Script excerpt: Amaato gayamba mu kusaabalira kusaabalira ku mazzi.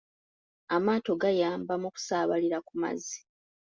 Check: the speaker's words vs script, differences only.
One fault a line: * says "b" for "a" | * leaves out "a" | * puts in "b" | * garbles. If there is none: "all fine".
* leaves out "kusaabalira"